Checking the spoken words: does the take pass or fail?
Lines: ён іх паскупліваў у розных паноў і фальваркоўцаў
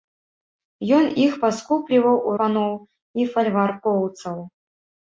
fail